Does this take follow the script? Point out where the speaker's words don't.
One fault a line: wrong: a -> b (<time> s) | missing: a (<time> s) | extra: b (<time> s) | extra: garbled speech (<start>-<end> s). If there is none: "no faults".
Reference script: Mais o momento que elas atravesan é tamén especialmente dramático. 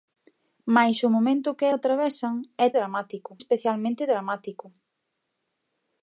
missing: elas (1.6 s)
wrong: tamén -> dramático (2.8 s)